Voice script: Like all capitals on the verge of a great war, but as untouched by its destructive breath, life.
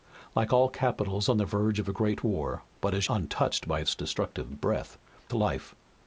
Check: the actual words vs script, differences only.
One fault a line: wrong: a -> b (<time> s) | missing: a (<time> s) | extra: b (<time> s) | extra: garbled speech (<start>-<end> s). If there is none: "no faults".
no faults